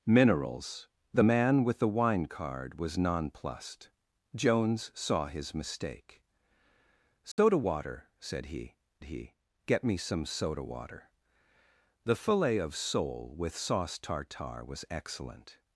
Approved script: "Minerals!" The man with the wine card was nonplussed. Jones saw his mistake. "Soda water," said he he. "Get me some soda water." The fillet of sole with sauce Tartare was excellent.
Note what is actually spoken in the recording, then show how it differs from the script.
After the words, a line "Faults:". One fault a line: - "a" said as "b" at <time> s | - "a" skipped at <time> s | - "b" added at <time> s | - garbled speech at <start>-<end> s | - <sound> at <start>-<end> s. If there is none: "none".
"Minerals!" The man with the wine card was nonplussed. Jones saw his mistake. "Soda water," said he he. "Get me some soda water." The fillet of sole with sauce Tartare was excellent.
Faults:
- dropout at 7.3-7.4 s